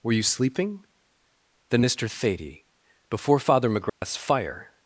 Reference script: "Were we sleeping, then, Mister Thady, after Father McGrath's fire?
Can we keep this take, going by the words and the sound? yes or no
no